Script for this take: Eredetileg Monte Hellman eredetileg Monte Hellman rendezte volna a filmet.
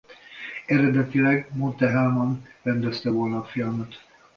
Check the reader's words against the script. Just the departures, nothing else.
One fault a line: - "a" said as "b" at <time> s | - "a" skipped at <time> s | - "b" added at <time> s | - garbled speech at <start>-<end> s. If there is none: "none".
- "eredetileg Monte Hellman" skipped at 2.5 s